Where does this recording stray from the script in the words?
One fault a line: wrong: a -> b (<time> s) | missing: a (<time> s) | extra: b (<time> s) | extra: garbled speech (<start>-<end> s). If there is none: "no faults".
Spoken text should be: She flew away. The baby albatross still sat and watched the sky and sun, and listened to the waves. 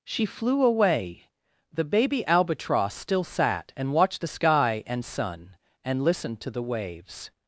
no faults